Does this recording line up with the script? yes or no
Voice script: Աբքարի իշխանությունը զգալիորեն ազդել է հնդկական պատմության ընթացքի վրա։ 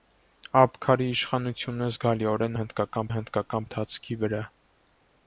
no